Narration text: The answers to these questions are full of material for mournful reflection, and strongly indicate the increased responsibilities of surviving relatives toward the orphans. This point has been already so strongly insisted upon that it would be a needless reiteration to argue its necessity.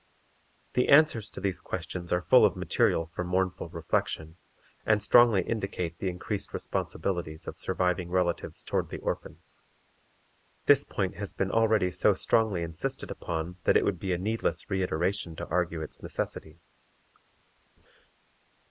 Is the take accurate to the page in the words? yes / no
yes